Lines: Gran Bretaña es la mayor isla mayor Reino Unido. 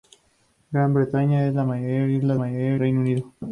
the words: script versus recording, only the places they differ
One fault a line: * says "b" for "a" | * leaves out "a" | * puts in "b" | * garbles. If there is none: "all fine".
all fine